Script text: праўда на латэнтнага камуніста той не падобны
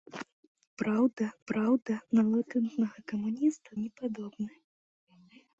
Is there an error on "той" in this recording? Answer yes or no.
yes